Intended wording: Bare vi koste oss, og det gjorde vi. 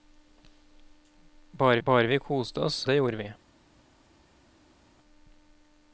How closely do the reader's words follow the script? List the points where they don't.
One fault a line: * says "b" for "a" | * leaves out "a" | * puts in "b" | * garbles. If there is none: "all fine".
* puts in "bare"
* leaves out "og"